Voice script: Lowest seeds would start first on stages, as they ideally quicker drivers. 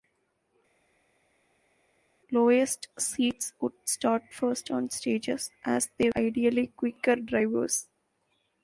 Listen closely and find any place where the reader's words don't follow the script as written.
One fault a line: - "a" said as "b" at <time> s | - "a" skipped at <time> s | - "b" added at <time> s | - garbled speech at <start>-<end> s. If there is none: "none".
none